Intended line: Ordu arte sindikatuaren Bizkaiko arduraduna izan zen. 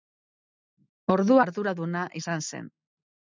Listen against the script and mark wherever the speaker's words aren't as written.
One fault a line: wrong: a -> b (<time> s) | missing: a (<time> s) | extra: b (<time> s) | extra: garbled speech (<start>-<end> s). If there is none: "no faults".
missing: arte sindikatuaren Bizkaiko (1.4 s)